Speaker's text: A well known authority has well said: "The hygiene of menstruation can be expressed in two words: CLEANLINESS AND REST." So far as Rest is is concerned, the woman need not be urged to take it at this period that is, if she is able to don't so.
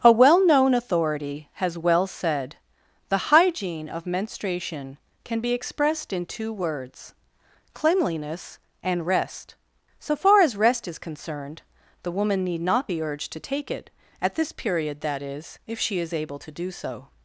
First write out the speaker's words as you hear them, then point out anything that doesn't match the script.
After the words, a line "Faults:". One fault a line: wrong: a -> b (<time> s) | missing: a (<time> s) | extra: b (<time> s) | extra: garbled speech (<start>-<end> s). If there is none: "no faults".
A well known authority has well said: "The hygiene of menstruation can be expressed in two words: CLEANLINESS AND REST." So far as Rest is concerned, the woman need not be urged to take it at this period that is, if she is able to do so.
Faults:
missing: is (11.0 s)
wrong: don't -> do (16.5 s)